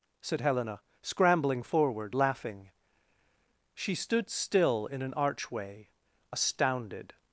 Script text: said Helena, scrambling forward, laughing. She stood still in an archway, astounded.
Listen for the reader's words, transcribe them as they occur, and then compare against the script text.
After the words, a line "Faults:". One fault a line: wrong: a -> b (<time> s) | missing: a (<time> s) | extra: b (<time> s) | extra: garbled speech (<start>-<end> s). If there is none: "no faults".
said Helena, scrambling forward, laughing. She stood still in an archway, astounded.
Faults:
no faults